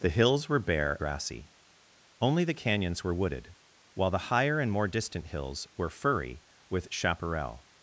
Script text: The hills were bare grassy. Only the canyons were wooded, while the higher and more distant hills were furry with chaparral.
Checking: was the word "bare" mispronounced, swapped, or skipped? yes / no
no